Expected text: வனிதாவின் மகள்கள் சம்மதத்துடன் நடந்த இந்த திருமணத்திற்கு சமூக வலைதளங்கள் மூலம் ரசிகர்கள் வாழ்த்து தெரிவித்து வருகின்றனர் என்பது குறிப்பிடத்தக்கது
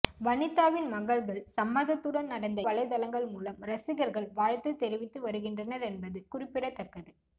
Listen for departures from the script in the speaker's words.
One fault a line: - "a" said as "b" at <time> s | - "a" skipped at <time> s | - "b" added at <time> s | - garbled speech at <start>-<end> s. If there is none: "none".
- "இந்த திருமணத்திற்கு சமூக" skipped at 2.6 s